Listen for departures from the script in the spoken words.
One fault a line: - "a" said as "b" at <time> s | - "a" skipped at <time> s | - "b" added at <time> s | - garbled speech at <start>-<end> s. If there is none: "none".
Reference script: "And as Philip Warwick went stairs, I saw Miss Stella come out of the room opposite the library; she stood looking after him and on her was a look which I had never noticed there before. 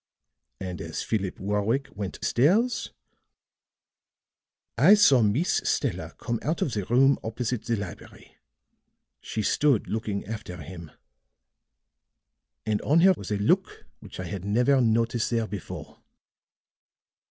none